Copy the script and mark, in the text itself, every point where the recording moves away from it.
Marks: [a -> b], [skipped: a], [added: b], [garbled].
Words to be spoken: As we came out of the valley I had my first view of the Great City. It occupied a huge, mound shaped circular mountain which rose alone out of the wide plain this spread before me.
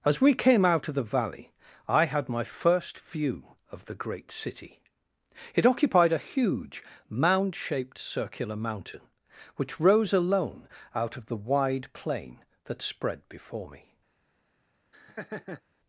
As we came out of the valley I had my first view of the Great City. It occupied a huge, mound shaped circular mountain which rose alone out of the wide plain [this -> that] spread before me.